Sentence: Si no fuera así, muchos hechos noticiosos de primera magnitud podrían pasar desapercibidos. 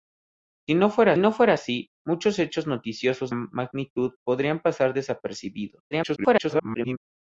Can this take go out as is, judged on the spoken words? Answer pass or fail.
fail